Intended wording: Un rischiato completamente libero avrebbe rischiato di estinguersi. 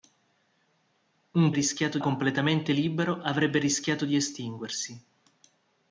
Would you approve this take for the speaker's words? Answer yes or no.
yes